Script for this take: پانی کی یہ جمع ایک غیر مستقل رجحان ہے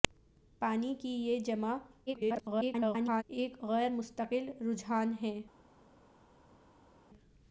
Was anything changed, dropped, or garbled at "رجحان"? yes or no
no